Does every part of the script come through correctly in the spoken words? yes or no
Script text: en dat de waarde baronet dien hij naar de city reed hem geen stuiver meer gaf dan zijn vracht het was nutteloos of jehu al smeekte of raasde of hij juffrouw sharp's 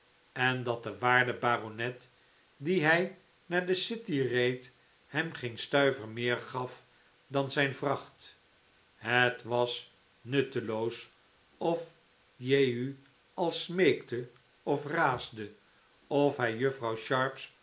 yes